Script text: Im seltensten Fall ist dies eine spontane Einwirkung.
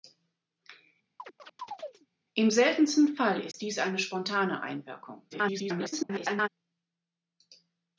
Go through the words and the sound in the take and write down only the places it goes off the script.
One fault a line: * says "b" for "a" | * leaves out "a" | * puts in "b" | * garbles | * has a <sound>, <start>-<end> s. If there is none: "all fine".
* has a chirp, 1.2-2.1 s
* has a dropout, 3.5-3.5 s
* garbles